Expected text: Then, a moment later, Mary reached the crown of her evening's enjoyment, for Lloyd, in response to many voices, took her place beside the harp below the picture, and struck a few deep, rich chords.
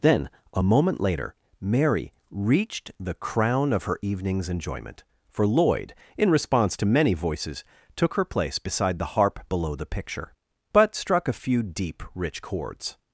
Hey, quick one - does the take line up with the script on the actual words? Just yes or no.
no